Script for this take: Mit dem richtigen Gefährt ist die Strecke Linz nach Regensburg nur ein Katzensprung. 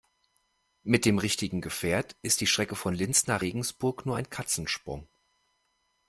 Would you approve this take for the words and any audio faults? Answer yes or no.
no